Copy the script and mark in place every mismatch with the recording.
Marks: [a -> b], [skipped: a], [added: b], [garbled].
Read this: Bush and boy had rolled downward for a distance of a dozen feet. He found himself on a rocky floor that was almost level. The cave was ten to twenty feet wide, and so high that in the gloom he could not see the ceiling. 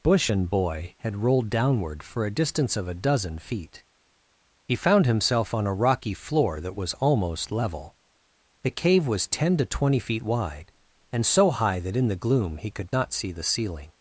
Bush and boy had rolled downward for a distance of a dozen feet. He found himself on a rocky floor that was almost level. The cave was ten to twenty feet wide, and so high that in the gloom he could not see the ceiling.